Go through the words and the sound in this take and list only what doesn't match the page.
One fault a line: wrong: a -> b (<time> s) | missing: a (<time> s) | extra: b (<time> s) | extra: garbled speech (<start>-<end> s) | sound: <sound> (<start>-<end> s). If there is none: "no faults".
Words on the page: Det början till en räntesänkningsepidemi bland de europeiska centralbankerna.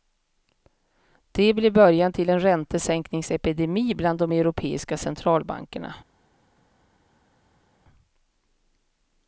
extra: blev (1.5 s)